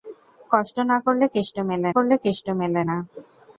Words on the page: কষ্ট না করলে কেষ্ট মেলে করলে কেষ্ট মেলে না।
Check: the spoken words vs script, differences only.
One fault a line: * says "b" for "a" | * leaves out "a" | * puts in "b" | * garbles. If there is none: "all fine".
all fine